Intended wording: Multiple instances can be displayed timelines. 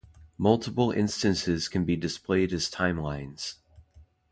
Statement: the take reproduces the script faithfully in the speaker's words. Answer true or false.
false